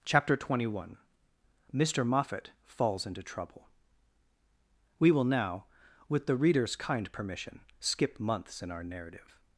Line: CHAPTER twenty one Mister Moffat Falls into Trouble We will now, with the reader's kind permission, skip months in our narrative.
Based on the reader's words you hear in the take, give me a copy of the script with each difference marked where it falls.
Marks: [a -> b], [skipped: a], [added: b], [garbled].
CHAPTER twenty one Mister Moffat Falls into Trouble We will now, with the reader's kind permission, skip months in our narrative.